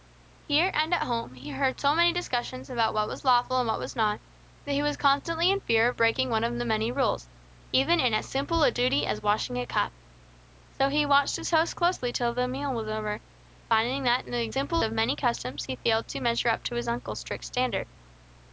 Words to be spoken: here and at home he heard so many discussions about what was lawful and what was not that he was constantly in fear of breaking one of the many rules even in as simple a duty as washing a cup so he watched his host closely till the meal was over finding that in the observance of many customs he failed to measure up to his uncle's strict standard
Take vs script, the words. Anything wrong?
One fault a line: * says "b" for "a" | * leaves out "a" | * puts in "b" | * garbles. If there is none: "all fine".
* says "simple" for "observance"